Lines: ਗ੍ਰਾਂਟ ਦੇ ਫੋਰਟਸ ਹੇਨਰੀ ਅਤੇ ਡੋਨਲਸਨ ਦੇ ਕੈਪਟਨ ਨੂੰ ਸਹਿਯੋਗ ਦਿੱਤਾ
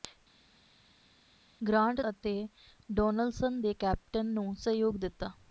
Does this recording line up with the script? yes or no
no